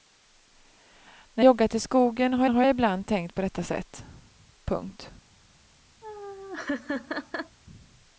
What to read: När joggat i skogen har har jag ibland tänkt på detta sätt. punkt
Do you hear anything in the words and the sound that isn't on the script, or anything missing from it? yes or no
yes